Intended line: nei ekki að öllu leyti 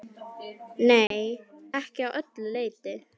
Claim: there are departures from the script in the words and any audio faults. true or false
true